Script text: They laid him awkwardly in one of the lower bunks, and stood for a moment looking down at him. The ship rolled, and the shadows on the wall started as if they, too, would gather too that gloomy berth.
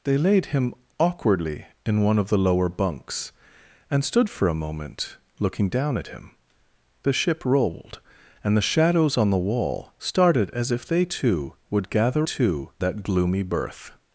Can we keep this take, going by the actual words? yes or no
yes